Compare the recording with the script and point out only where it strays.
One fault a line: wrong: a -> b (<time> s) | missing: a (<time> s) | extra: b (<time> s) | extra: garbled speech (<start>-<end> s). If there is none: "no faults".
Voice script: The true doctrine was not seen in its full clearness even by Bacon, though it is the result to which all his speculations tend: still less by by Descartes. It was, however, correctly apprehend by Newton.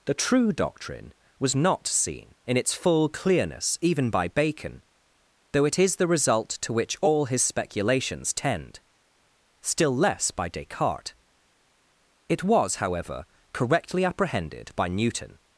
missing: by (10.5 s)
wrong: apprehend -> apprehended (14.0 s)